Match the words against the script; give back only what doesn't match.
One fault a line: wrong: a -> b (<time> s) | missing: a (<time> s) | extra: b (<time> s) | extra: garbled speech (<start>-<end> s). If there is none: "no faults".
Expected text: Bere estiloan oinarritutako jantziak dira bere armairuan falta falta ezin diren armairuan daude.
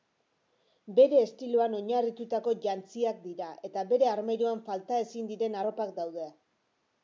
extra: eta (3.7 s)
missing: falta (5.0 s)
wrong: armairuan -> arropak (5.6 s)